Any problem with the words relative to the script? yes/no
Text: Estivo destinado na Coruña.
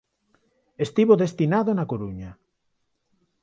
no